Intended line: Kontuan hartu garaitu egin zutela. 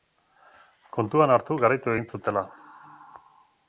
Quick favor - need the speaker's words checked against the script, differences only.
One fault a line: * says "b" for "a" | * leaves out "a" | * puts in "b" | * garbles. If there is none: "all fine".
all fine